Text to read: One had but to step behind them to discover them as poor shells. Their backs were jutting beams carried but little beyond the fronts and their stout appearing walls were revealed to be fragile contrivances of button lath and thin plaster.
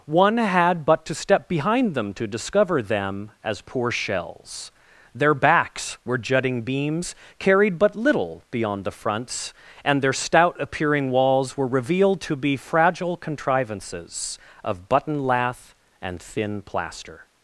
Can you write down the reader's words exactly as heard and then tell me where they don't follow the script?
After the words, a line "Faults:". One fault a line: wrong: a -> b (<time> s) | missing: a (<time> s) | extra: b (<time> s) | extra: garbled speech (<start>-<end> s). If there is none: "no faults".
One had but to step behind them to discover them as poor shells. Their backs were jutting beams carried but little beyond the fronts and their stout appearing walls were revealed to be fragile contrivances of button lath and thin plaster.
Faults:
no faults